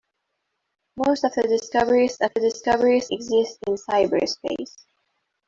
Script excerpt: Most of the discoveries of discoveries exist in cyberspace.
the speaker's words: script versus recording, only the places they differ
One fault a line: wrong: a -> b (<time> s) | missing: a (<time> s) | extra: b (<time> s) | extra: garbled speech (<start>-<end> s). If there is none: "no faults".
no faults